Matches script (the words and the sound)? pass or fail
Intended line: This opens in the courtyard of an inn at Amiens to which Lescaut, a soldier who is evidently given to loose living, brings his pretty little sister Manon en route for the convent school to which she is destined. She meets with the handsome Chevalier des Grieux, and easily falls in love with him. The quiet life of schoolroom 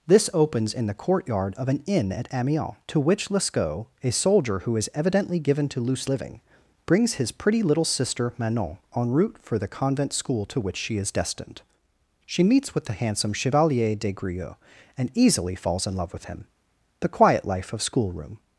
pass